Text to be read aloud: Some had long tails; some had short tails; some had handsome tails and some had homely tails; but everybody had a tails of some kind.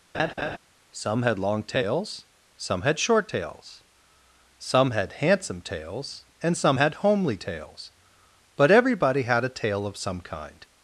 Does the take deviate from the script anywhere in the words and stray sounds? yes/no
yes